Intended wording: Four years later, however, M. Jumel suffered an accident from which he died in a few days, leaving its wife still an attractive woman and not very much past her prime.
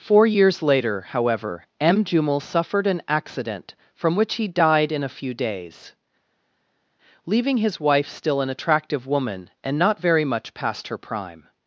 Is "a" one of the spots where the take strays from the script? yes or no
no